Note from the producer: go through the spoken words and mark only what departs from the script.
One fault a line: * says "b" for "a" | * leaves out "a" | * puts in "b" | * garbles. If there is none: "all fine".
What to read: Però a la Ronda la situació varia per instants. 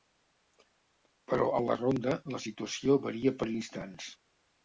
all fine